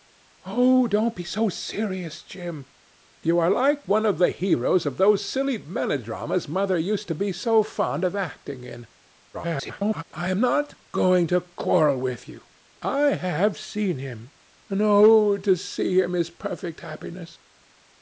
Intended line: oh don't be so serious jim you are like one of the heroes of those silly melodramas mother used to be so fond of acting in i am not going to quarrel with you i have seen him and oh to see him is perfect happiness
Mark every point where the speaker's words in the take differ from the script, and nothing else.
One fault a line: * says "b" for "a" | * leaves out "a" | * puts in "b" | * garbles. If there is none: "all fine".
* garbles